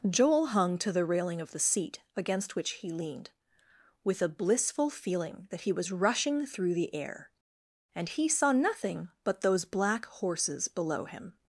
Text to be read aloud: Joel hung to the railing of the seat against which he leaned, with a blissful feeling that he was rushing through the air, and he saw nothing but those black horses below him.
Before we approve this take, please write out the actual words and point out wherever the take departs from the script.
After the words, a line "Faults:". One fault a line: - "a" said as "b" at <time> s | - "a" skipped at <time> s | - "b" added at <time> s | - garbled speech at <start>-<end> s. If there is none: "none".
Joel hung to the railing of the seat against which he leaned, with a blissful feeling that he was rushing through the air, and he saw nothing but those black horses below him.
Faults:
none